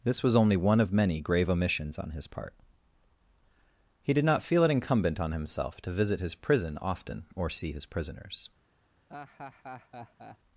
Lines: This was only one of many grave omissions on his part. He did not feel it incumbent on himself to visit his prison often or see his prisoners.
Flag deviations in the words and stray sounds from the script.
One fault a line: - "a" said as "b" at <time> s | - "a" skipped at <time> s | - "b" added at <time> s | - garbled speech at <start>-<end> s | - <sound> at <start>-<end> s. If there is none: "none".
- laugh at 9.1-10.4 s